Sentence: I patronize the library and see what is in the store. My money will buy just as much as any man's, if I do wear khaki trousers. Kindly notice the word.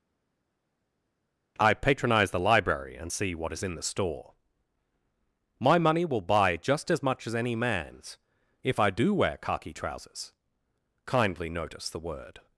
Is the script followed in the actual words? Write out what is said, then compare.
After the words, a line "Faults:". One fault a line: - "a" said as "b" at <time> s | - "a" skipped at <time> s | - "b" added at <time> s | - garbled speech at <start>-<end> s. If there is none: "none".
I patronize the library and see what is in the store. My money will buy just as much as any man's, if I do wear khaki trousers. Kindly notice the word.
Faults:
none